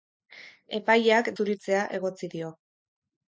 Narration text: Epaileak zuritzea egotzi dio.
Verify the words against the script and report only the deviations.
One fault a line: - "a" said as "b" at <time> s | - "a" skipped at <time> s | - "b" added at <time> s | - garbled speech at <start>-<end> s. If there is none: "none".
none